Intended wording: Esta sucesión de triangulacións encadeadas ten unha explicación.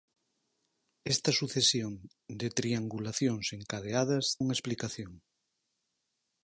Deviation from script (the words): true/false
true